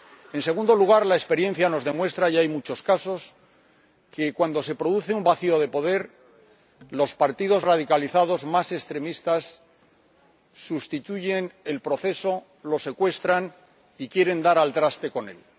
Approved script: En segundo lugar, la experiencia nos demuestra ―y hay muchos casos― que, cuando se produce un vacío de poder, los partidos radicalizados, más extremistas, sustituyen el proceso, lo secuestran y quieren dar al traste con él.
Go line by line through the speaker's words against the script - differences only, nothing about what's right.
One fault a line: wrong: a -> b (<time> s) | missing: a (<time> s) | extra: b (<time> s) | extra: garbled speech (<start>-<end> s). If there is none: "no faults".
no faults